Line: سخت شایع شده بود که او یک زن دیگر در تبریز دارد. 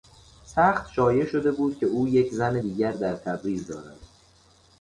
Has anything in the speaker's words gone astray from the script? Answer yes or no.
no